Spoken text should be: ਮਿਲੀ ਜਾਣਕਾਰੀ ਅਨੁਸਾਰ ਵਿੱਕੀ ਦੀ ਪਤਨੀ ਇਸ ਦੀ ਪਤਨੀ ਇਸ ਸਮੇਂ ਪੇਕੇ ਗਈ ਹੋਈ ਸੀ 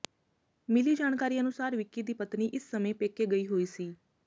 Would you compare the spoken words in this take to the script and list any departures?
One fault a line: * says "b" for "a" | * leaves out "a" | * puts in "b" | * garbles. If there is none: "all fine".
* leaves out "ਦੀ ਪਤਨੀ ਇਸ"